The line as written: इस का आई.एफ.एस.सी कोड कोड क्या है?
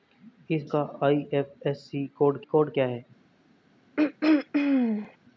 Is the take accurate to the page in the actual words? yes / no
yes